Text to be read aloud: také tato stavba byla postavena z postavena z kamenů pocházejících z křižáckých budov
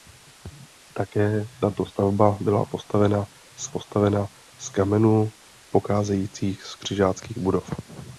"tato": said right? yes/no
yes